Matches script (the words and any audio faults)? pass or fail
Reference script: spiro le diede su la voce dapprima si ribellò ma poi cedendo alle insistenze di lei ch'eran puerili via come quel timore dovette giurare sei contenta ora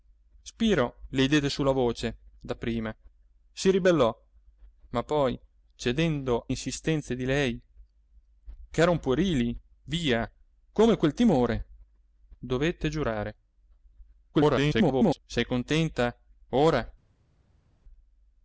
fail